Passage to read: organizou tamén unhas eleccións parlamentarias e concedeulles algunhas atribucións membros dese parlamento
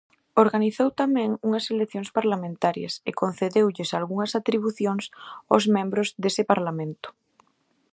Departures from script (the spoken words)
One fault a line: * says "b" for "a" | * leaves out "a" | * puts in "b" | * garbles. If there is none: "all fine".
* puts in "aos"